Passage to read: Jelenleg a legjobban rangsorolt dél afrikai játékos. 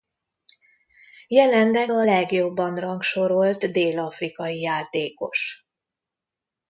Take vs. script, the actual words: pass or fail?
pass